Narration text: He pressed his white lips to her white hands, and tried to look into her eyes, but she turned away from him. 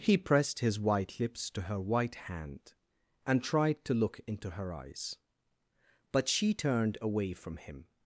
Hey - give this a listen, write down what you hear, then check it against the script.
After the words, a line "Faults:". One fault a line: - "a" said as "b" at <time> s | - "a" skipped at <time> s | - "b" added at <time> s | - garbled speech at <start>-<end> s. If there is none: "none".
He pressed his white lips to her white hand, and tried to look into her eyes, but she turned away from him.
Faults:
- "hands" said as "hand" at 2.2 s